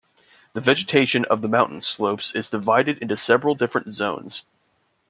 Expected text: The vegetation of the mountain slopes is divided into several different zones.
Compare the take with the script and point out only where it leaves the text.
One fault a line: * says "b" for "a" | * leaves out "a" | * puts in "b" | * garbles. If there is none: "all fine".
all fine